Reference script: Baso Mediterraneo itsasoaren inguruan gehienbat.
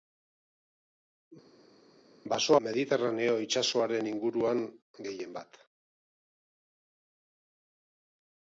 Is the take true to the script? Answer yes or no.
yes